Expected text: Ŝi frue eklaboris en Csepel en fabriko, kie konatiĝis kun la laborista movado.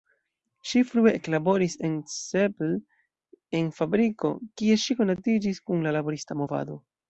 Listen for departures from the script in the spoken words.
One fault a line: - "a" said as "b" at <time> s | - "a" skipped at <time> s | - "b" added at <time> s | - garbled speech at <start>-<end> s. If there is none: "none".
- "ŝi" added at 4.9 s